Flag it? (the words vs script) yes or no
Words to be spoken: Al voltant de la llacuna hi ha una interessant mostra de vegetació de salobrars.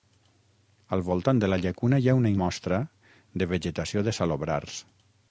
yes